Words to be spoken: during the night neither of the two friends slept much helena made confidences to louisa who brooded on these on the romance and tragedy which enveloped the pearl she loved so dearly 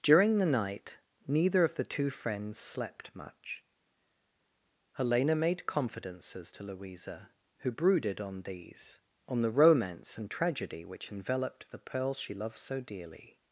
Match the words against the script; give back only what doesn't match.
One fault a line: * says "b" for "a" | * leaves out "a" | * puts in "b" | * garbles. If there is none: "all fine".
all fine